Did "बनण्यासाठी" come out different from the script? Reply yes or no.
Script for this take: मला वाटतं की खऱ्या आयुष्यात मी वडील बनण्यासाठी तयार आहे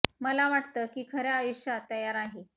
yes